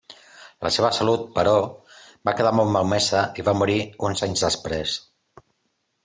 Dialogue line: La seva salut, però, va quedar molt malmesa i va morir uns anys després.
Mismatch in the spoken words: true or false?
false